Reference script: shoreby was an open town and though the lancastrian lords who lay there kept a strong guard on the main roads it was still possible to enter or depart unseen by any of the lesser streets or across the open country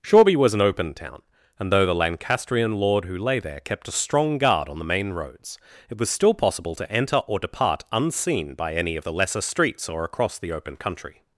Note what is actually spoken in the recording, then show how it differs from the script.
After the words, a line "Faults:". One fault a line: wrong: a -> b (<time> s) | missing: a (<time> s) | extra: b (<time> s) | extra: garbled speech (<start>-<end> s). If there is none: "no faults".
shoreby was an open town and though the lancastrian lord who lay there kept a strong guard on the main roads it was still possible to enter or depart unseen by any of the lesser streets or across the open country
Faults:
wrong: lords -> lord (2.7 s)